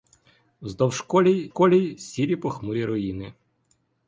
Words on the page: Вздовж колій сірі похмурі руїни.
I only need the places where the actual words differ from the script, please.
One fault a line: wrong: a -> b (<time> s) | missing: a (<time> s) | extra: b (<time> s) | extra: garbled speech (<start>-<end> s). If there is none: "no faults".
extra: колій (1.5 s)